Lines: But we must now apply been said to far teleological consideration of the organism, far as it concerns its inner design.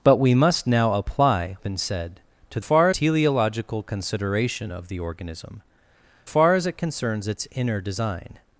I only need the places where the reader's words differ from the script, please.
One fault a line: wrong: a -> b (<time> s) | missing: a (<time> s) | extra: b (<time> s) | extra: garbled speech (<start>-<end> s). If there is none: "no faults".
no faults